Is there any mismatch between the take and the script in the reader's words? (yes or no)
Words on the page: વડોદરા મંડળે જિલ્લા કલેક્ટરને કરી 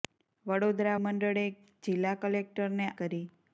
no